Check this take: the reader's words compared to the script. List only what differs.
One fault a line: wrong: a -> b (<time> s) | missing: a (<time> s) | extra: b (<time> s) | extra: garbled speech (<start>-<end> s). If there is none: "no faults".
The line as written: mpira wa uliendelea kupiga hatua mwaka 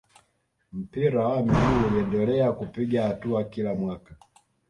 extra: miguu (1.4 s)
extra: kila (3.4 s)